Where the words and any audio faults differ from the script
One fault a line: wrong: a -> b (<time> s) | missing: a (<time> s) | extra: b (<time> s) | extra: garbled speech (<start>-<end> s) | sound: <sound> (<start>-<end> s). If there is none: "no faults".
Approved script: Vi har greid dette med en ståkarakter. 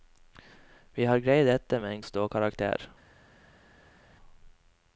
no faults